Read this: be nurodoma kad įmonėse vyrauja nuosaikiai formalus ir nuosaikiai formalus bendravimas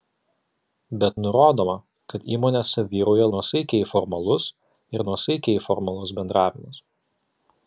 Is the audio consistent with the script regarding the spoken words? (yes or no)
yes